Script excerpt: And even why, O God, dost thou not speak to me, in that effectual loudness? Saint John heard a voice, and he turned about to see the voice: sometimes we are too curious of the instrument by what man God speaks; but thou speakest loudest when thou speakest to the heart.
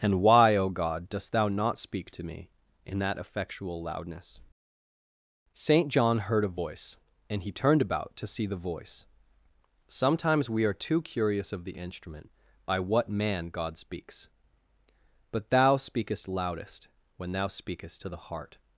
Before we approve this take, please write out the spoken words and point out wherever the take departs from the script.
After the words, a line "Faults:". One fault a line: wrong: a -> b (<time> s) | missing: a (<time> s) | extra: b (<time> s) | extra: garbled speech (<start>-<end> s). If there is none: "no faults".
And why, O God, dost thou not speak to me, in that effectual loudness? Saint John heard a voice, and he turned about to see the voice: sometimes we are too curious of the instrument by what man God speaks; but thou speakest loudest when thou speakest to the heart.
Faults:
missing: even (0.2 s)